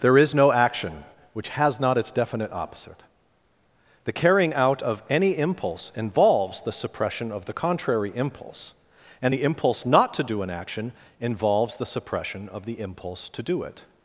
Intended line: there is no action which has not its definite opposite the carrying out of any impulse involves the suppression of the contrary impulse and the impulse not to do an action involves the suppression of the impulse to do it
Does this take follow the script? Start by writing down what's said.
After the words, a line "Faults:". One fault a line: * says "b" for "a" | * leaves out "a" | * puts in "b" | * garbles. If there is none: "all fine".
there is no action which has not its definite opposite the carrying out of any impulse involves the suppression of the contrary impulse and the impulse not to do an action involves the suppression of the impulse to do it
Faults:
all fine